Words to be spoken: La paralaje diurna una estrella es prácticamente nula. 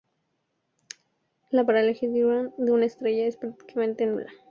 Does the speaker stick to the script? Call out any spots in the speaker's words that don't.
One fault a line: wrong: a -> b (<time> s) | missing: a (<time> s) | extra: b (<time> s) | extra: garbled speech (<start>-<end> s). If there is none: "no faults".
extra: de (2.6 s)